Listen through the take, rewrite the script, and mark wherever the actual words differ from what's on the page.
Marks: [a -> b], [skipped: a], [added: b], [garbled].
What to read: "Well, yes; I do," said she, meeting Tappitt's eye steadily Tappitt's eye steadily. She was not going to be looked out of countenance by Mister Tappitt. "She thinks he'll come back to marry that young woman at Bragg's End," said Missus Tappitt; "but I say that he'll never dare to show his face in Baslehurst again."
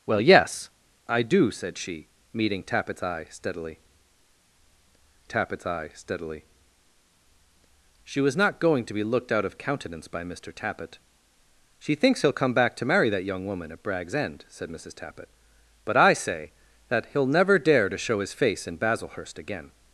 "Well, yes; I do," said she, meeting Tappitt's eye steadily Tappitt's eye steadily. She was not going to be looked out of countenance by Mister Tappitt. "She thinks he'll come back to marry that young woman at Bragg's End," said Missus Tappitt; "but I say that he'll never dare to show his face in Baslehurst again."